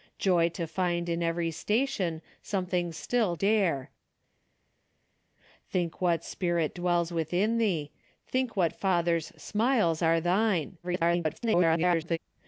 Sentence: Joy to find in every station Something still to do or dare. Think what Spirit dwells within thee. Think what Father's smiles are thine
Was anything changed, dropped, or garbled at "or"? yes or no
yes